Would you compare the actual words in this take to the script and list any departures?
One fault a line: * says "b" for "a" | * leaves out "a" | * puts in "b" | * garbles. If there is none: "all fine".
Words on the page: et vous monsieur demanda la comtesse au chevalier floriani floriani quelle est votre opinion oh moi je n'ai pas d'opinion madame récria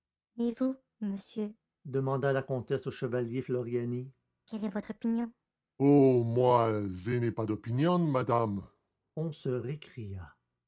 * leaves out "floriani"
* puts in "on se"